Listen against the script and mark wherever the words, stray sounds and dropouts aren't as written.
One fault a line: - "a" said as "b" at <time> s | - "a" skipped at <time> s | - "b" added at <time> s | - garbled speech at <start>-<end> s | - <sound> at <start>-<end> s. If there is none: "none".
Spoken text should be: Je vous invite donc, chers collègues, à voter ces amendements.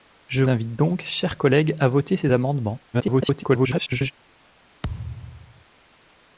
- "vous" skipped at 0.4 s
- garbled speech at 2.9-4.1 s
- thud at 4.8-5.7 s